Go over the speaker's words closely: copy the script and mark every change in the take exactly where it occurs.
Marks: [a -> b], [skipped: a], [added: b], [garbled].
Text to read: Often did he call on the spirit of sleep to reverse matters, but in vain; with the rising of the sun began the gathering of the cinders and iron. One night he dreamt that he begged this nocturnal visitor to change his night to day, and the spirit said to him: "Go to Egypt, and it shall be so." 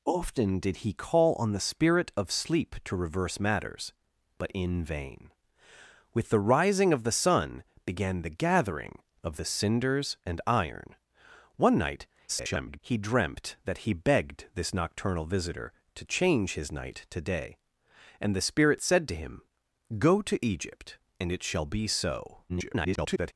Often did he call on the spirit of sleep to reverse matters, but in vain; with the rising of the sun began the gathering of the cinders and iron. One night [garbled] he dreamt that he begged this nocturnal visitor to change his night to day, and the spirit said to him: "Go to Egypt, and it shall be so." [garbled]